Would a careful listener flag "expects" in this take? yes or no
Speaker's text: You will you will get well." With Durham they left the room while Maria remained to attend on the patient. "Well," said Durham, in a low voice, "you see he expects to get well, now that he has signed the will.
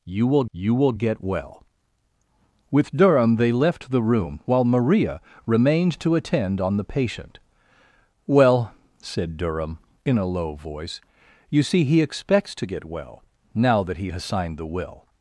no